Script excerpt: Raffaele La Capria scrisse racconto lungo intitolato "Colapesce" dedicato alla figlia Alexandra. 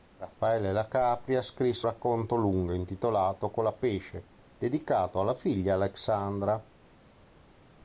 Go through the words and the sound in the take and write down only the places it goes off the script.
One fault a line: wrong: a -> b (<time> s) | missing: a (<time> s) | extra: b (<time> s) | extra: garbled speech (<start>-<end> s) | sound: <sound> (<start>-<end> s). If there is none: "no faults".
no faults